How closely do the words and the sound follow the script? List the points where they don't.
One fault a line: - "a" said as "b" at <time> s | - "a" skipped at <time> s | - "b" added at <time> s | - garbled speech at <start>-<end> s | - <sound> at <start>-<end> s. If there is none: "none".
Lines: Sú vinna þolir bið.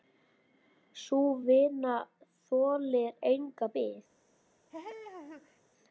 - "enga" added at 3.3 s
- laugh at 4.7-5.6 s